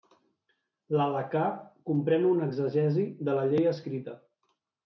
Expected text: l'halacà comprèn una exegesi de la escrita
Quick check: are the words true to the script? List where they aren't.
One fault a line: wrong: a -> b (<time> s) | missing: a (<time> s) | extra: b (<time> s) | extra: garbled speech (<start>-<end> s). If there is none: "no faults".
extra: llei (3.5 s)